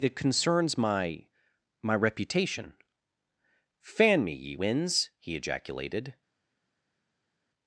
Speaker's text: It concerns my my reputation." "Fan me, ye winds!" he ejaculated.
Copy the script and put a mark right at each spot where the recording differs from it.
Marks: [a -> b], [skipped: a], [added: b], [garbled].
It concerns my my reputation." "Fan me, ye winds!" he ejaculated.